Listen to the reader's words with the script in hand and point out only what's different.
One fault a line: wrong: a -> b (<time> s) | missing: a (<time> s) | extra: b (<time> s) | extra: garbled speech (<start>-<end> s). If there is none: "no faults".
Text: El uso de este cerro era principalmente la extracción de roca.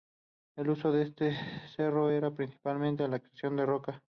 no faults